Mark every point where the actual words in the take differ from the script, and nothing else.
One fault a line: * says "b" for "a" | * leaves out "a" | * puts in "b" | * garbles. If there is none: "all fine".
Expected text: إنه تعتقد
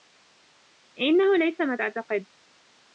* puts in "ليس ما"